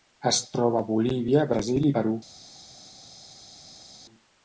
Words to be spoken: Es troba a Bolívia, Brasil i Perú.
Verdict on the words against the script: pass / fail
pass